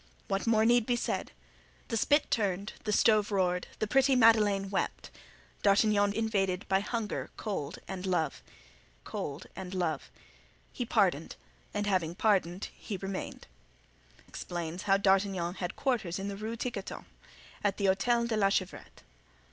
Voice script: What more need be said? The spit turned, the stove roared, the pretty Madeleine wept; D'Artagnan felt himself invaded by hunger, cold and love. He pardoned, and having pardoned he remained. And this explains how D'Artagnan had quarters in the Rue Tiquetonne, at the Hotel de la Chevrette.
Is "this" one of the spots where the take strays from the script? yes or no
yes